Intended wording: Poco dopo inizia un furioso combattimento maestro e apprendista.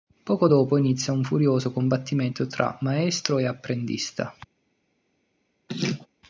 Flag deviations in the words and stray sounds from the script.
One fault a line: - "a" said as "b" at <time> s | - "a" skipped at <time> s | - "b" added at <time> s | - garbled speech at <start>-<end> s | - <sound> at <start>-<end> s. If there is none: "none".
- "tra" added at 2.5 s
- laugh at 5.7-6.1 s